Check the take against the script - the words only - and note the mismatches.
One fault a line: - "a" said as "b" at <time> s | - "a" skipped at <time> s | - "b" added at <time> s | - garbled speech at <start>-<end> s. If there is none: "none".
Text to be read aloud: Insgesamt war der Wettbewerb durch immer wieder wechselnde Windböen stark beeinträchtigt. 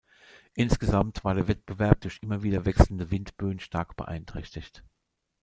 none